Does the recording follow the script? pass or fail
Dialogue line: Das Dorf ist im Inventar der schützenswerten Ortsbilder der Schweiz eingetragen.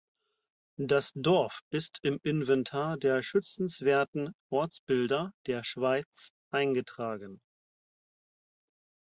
pass